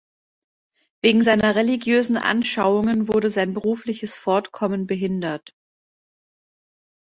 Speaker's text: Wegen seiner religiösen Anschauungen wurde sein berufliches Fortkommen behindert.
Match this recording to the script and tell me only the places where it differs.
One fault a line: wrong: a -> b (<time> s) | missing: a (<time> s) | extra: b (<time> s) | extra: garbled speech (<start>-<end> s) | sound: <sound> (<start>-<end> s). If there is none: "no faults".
no faults